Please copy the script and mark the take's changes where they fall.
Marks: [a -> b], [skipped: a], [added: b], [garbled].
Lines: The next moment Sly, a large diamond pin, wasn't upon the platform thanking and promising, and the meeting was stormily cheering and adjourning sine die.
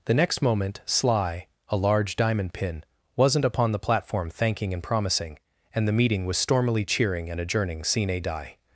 The next moment Sly, a large diamond pin, wasn't upon the platform thanking and promising, and the meeting was stormily cheering and adjourning sine die.